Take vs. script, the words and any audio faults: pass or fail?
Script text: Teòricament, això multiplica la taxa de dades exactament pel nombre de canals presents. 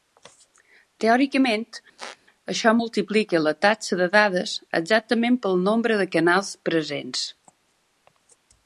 fail